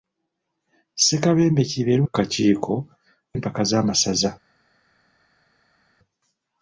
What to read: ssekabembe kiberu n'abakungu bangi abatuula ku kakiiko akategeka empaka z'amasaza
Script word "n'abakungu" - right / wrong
wrong